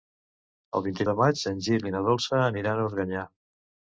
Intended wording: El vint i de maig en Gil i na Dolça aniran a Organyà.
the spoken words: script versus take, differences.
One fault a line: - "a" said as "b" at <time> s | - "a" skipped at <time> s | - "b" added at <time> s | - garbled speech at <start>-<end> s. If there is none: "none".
none